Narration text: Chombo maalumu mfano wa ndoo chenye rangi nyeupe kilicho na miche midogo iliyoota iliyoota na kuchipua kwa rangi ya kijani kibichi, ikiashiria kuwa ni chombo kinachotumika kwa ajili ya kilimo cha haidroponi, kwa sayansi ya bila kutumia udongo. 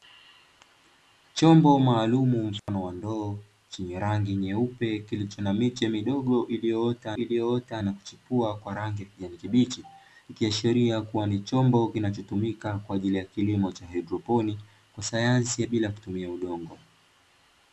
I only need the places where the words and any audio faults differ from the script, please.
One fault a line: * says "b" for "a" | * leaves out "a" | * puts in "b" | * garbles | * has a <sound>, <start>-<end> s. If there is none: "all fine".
* has a dropout, 2.6-2.7 s